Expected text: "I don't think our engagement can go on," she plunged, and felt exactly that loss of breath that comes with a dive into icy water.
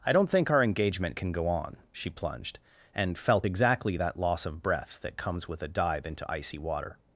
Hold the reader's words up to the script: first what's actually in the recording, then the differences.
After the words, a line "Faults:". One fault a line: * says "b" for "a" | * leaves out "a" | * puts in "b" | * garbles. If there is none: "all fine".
"I don't think our engagement can go on," she plunged, and felt exactly that loss of breath that comes with a dive into icy water.
Faults:
all fine